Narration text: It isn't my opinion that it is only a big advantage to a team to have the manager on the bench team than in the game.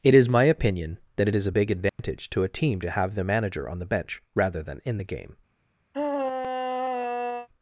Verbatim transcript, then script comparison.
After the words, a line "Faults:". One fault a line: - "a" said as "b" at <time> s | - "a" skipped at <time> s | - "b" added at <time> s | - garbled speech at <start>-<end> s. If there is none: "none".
It is my opinion that it is a big advantage to a team to have the manager on the bench rather than in the game.
Faults:
- "isn't" said as "is" at 0.1 s
- "only" skipped at 1.4 s
- "team" said as "rather" at 4.3 s